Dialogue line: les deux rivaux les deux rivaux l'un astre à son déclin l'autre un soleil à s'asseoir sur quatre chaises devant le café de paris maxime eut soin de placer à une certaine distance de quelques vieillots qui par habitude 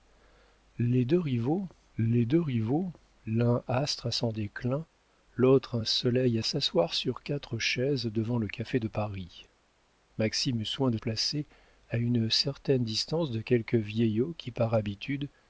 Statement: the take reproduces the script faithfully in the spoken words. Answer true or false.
true